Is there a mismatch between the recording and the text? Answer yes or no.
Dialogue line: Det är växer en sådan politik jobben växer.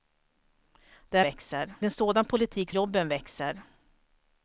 no